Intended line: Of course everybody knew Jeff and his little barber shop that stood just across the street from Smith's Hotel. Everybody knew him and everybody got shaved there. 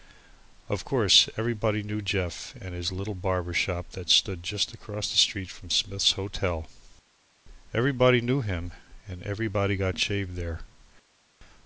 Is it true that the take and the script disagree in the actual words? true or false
false